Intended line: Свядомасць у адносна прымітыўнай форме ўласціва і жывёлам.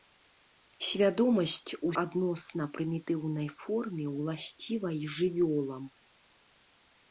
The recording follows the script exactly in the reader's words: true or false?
true